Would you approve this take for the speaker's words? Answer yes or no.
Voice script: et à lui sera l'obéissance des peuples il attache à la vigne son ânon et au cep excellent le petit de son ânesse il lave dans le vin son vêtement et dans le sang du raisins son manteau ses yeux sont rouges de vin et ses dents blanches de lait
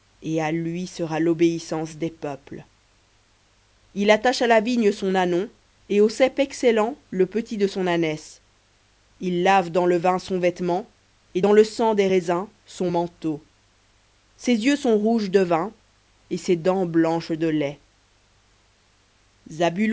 no